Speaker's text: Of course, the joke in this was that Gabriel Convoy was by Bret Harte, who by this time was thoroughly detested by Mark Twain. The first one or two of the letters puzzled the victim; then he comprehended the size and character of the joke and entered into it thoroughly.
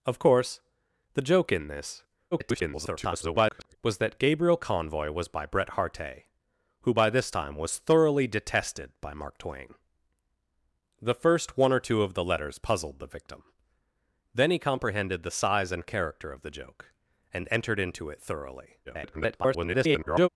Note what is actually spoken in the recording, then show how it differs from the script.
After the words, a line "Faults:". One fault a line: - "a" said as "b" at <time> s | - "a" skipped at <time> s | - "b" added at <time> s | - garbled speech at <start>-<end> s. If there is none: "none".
Of course, the joke in this [garbled] was that Gabriel Convoy was by Bret Harte, who by this time was thoroughly detested by Mark Twain. The first one or two of the letters puzzled the victim; then he comprehended the size and character of the joke and entered into it thoroughly. [garbled]
Faults:
- garbled speech at 2.3-3.8 s
- garbled speech at 18.8-20.3 s